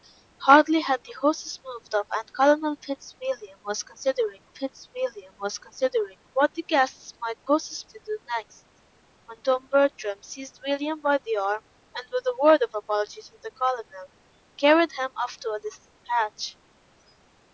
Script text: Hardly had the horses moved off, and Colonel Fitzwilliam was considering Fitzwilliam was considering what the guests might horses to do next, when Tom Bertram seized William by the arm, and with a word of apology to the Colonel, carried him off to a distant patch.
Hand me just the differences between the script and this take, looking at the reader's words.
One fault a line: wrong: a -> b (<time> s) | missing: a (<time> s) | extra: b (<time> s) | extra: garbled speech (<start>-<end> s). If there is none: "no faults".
no faults